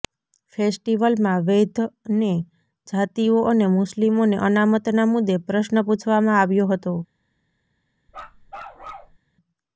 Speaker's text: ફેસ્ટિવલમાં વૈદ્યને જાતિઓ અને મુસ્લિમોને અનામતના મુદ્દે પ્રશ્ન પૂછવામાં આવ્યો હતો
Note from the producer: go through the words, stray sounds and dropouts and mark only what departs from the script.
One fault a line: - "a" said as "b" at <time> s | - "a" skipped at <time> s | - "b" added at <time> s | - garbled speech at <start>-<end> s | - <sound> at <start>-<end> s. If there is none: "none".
- bark at 8.1-9.2 s